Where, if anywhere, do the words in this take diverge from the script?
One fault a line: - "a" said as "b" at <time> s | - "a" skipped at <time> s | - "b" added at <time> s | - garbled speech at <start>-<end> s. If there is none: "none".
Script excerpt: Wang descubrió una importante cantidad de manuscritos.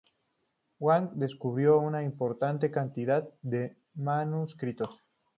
none